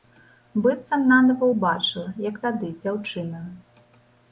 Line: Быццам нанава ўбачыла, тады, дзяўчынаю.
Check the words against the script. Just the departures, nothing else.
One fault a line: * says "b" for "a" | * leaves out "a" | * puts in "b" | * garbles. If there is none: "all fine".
* puts in "як"